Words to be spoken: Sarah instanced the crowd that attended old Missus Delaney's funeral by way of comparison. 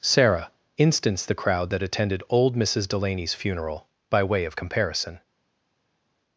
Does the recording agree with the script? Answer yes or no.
yes